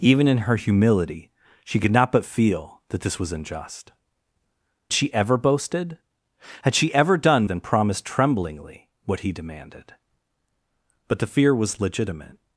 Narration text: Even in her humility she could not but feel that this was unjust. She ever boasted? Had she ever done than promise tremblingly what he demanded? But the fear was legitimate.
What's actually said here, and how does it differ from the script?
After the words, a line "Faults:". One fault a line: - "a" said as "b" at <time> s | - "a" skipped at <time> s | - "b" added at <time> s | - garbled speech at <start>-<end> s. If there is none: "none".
Even in her humility she could not but feel that this was unjust. She ever boasted? Had she ever done than promise tremblingly what he demanded? But the fear was legitimate.
Faults:
none